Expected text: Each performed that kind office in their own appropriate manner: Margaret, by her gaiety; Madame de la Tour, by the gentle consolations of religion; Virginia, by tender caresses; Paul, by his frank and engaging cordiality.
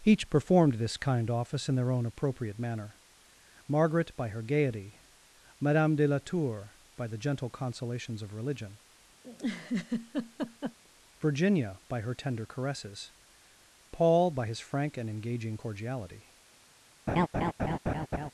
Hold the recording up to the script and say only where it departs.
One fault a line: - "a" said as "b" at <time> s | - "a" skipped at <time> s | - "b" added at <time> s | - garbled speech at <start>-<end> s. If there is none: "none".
- "that" said as "this" at 0.8 s
- "her" added at 12.0 s